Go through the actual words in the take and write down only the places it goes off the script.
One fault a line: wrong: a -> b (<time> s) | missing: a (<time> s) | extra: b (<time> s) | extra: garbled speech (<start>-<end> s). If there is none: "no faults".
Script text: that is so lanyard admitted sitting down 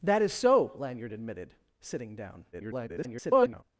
extra: garbled speech (2.5-3.6 s)